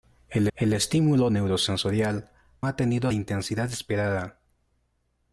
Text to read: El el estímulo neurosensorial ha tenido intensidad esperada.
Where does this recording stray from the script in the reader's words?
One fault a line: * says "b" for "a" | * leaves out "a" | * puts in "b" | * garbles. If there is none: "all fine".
all fine